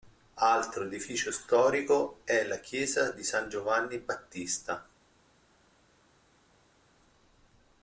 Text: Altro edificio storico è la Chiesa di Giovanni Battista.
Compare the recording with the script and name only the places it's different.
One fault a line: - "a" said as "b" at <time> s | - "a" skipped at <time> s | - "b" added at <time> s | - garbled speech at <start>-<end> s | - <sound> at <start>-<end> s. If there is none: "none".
- "San" added at 3.2 s